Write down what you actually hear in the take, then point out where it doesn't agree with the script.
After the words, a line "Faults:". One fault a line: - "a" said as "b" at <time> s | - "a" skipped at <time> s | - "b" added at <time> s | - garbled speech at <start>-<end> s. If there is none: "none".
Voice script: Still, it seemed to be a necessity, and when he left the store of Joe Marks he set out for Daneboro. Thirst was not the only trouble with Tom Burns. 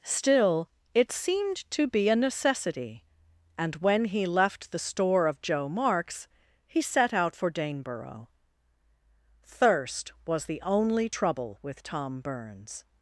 Still, it seemed to be a necessity, and when he left the store of Joe Marks he set out for Daneboro. Thirst was the only trouble with Tom Burns.
Faults:
- "not" skipped at 10.4 s